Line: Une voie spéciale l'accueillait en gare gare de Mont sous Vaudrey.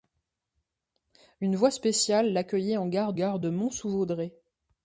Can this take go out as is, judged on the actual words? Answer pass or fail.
pass